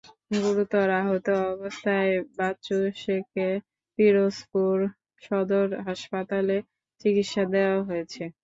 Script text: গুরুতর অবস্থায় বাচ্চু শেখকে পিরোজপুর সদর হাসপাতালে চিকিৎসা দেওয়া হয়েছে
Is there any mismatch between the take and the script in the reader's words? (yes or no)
yes